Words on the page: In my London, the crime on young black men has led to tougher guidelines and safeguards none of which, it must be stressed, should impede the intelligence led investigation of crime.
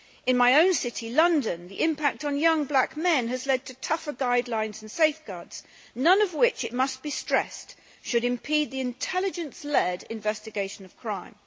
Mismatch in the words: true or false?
true